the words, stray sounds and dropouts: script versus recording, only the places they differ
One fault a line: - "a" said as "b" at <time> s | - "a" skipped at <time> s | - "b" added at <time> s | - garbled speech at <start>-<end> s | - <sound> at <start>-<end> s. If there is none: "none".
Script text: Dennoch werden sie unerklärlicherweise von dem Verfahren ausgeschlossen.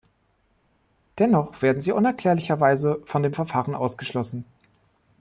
none